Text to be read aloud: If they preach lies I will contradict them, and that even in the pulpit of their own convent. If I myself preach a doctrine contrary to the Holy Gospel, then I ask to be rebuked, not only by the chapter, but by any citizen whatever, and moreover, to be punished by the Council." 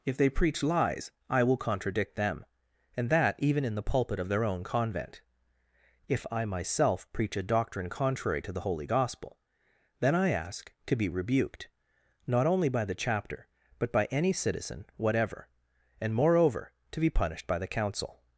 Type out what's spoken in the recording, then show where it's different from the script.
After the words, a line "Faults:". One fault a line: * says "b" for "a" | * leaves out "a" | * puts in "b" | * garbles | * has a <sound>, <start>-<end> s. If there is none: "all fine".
If they preach lies I will contradict them, and that even in the pulpit of their own convent. If I myself preach a doctrine contrary to the Holy Gospel, then I ask to be rebuked, not only by the chapter, but by any citizen whatever, and moreover, to be punished by the Council."
Faults:
all fine